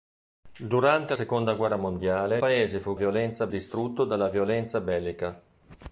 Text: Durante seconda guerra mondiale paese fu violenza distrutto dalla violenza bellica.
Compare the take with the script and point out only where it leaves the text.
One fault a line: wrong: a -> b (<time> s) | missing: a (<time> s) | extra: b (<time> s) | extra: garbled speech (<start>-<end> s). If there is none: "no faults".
no faults